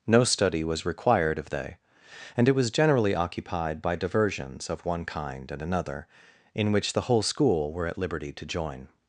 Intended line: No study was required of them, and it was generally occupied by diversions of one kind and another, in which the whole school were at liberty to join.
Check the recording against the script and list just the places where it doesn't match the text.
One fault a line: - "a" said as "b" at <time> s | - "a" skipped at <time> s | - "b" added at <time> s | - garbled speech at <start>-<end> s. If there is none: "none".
- "them" said as "they" at 1.5 s